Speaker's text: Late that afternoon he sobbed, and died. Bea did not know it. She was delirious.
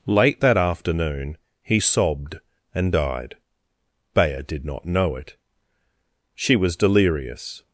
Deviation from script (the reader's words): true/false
false